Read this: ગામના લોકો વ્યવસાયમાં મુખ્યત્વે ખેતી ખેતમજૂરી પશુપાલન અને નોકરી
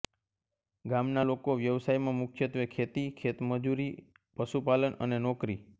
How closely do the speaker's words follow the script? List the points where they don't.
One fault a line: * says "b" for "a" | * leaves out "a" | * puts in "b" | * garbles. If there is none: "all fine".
all fine